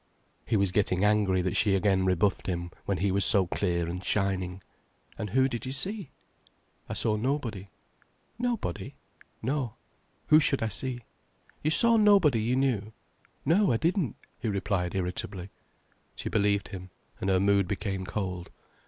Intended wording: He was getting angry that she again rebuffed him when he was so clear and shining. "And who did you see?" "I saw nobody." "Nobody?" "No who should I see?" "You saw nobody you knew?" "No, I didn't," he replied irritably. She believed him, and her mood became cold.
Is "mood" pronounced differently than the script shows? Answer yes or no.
no